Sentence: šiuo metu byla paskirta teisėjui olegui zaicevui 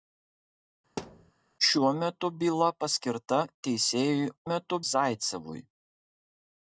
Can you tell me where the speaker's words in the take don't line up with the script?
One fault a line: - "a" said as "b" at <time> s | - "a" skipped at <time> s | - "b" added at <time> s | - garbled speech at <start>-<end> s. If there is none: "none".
- "olegui" said as "metu" at 4.5 s